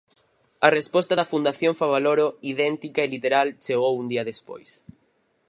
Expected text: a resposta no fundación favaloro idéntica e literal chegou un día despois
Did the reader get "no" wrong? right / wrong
wrong